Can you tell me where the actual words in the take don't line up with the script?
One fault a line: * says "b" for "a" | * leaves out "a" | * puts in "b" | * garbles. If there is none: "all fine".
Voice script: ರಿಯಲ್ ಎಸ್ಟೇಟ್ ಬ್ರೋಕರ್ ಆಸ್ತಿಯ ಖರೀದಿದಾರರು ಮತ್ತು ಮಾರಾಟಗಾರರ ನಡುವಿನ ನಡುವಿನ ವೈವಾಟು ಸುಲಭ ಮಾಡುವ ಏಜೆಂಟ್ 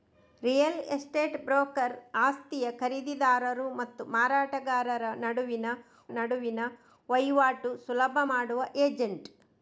all fine